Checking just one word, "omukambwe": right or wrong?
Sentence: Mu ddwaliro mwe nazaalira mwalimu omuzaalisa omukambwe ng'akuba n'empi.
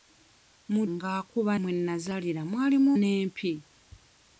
wrong